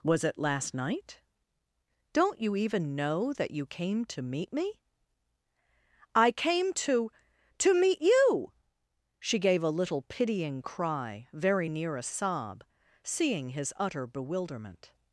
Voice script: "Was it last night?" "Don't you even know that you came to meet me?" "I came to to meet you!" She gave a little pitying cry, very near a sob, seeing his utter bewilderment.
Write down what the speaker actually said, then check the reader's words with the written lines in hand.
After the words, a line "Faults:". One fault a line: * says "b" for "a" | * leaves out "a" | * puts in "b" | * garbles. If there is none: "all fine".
"Was it last night?" "Don't you even know that you came to meet me?" "I came to to meet you!" She gave a little pitying cry, very near a sob, seeing his utter bewilderment.
Faults:
all fine